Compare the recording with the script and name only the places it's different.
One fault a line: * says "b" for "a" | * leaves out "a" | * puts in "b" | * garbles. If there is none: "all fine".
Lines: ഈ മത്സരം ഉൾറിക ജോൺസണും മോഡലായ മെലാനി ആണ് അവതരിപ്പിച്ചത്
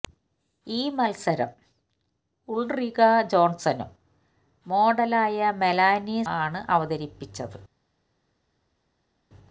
all fine